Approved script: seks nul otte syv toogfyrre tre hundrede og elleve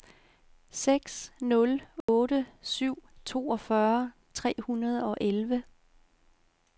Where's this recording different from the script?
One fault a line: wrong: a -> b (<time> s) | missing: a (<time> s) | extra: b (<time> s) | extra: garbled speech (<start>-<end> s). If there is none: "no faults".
no faults